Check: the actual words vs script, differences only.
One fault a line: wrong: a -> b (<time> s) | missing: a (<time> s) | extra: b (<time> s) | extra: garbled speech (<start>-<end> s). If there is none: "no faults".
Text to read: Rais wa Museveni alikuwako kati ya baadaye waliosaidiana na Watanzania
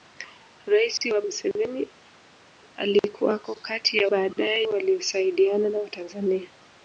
no faults